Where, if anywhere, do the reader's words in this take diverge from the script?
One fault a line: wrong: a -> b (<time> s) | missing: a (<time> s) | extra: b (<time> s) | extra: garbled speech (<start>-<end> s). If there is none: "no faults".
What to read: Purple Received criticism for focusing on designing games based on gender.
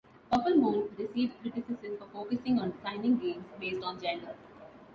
extra: Moon (0.6 s)